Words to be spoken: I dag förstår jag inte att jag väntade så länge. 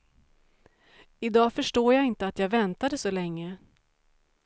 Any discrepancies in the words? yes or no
no